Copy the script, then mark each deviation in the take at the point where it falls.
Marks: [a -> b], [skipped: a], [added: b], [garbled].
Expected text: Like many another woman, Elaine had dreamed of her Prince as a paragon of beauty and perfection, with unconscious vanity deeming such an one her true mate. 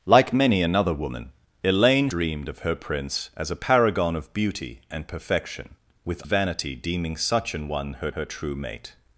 Like many another woman, Elaine [skipped: had] dreamed of her Prince as a paragon of beauty and perfection, with [skipped: unconscious] vanity deeming such an one her [added: her] true mate.